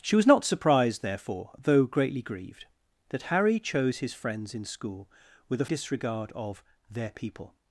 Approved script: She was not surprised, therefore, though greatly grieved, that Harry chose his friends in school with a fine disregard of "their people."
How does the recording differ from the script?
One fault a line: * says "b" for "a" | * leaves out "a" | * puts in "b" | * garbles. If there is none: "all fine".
* leaves out "fine"